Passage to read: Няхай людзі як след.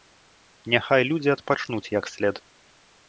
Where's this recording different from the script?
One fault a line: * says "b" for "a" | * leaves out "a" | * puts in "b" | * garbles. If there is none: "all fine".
* puts in "адпачнуць"